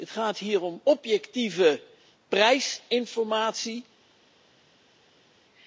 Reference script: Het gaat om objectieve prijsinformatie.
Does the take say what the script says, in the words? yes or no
no